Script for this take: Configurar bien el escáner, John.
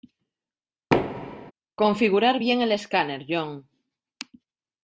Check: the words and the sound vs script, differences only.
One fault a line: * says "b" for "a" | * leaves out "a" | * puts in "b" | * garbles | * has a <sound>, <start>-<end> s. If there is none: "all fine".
* has a thud, 0.9-1.5 s